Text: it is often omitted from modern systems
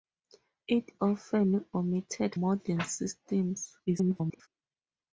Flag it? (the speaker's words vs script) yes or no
yes